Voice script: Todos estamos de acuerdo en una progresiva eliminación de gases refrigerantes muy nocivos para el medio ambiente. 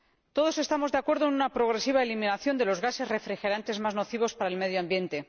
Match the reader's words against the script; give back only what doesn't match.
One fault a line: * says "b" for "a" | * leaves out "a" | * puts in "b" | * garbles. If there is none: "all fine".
* puts in "los"
* says "más" for "muy"